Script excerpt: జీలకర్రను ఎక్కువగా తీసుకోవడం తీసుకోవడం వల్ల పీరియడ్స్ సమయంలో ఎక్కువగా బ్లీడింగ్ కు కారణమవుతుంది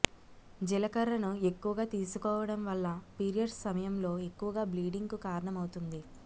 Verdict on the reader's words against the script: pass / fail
fail